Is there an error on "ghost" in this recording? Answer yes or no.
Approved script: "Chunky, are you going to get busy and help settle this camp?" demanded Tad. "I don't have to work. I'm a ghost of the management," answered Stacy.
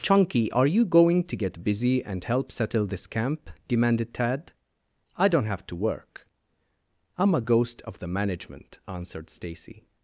no